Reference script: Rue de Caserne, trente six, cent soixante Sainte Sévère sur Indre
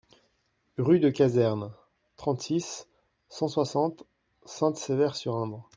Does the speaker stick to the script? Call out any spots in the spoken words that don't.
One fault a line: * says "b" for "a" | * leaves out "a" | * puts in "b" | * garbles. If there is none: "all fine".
all fine